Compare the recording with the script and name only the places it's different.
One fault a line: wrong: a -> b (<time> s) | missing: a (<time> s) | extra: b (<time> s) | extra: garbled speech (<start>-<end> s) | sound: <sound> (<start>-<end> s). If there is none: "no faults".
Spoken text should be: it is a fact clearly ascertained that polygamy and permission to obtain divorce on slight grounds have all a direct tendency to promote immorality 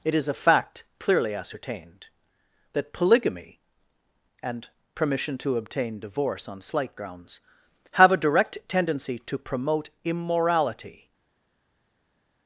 missing: all (8.1 s)